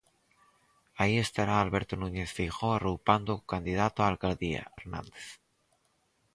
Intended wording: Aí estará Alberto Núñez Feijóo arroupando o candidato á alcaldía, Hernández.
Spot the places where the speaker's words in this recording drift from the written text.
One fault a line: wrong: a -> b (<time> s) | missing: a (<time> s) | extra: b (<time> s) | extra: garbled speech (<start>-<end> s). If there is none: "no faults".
no faults